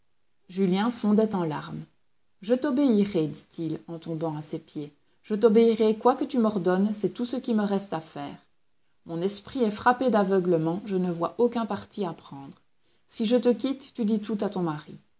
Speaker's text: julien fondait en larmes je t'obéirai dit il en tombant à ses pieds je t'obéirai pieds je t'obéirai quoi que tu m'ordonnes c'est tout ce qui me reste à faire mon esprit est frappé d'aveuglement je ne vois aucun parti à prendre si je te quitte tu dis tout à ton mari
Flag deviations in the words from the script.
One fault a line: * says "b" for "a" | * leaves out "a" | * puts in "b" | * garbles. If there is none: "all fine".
* leaves out "pieds je t'obéirai"